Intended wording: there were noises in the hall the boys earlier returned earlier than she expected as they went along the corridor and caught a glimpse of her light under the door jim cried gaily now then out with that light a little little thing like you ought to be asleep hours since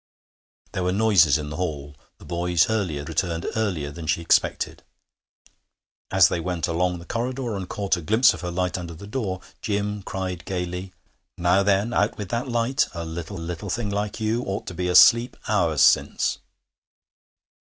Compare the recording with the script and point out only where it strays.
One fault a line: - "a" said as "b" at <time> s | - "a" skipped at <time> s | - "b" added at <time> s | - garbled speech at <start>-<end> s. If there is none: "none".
none